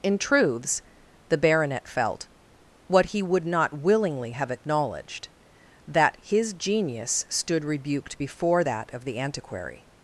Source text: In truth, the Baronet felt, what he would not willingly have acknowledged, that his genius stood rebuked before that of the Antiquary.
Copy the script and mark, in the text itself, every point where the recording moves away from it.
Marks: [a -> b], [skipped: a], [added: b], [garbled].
In [truth, -> truths] the Baronet felt, what he would not willingly have acknowledged, that his genius stood rebuked before that of the Antiquary.